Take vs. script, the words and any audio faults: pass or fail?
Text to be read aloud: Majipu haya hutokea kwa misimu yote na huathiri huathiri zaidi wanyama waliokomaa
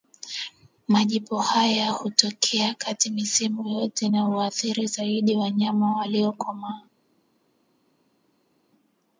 fail